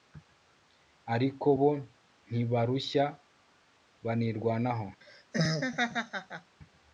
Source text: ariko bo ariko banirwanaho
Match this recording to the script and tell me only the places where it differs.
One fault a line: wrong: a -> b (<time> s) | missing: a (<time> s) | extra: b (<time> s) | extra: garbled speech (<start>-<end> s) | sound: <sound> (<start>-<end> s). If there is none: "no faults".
wrong: ariko -> ntibarushya (2.3 s)
sound: laugh (5.0-6.6 s)